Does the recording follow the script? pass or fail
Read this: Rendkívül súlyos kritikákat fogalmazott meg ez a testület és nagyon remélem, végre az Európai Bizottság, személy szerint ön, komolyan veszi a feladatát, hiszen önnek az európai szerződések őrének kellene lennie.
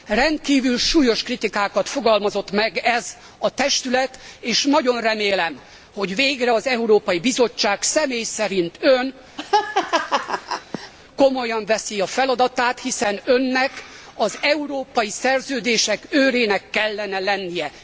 fail